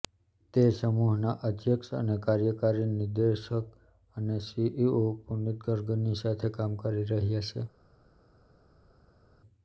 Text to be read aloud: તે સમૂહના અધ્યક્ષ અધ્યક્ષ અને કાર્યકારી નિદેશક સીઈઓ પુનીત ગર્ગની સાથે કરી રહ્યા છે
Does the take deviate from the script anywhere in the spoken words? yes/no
yes